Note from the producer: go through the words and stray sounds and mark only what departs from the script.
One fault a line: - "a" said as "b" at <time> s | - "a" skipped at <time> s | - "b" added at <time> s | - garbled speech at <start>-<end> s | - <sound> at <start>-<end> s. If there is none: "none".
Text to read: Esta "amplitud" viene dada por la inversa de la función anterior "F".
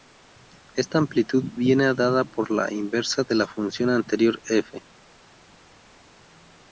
none